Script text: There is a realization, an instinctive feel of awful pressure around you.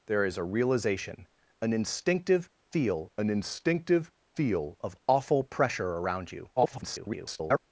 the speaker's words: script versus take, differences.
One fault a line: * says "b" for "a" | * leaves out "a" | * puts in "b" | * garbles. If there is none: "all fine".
* puts in "an instinctive feel"
* garbles